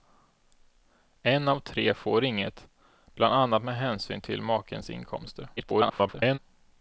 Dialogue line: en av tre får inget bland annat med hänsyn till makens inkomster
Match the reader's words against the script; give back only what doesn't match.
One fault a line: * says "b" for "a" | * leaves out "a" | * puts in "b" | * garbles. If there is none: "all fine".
* garbles